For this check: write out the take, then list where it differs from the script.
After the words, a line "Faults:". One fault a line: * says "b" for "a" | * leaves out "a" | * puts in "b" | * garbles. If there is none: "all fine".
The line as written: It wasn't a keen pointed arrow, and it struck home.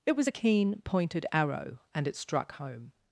It was a keen pointed arrow, and it struck home.
Faults:
* says "was" for "wasn't"